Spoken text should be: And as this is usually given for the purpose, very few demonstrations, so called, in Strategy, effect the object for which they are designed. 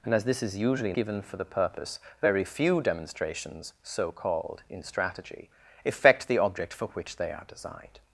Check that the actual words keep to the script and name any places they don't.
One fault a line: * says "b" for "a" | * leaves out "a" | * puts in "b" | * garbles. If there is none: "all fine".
all fine